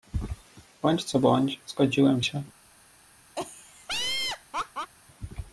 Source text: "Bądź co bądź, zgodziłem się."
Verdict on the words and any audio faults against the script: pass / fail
fail